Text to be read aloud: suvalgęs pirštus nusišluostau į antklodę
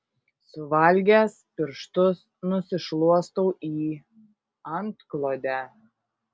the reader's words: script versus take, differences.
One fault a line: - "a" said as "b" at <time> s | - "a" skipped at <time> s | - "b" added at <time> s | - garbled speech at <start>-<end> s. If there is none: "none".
none